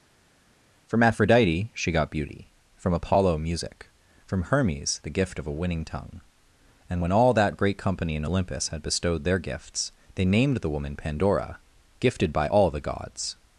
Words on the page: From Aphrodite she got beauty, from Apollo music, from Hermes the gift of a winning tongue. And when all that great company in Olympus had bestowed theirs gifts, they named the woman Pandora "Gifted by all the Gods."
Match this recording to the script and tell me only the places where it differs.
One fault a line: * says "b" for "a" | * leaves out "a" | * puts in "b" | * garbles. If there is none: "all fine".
* says "their" for "theirs"